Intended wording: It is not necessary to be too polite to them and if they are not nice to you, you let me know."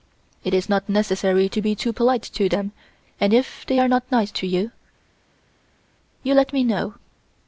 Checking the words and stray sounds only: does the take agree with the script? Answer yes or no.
yes